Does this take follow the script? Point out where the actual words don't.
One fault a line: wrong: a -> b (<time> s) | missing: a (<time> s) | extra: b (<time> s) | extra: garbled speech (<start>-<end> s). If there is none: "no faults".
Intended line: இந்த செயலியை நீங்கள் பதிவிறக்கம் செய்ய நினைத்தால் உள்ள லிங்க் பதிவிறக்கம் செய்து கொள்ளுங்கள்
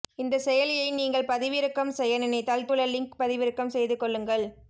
no faults